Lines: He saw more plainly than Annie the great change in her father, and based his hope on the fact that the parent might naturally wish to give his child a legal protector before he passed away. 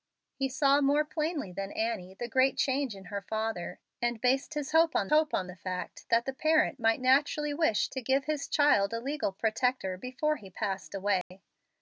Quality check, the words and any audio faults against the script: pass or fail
fail